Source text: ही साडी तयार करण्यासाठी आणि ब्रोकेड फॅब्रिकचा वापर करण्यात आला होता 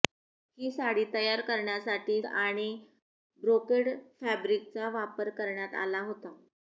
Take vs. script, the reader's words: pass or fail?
pass